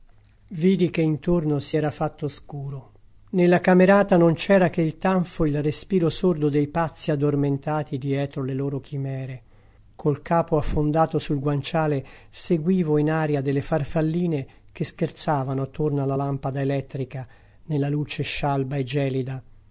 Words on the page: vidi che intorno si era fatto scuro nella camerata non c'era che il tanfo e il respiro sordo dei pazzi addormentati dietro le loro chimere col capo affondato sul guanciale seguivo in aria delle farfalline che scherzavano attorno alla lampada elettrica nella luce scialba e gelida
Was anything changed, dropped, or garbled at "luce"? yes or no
no